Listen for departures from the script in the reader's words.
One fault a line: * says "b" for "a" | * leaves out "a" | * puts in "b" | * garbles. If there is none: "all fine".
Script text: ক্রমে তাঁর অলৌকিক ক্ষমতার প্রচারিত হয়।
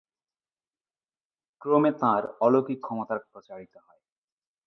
all fine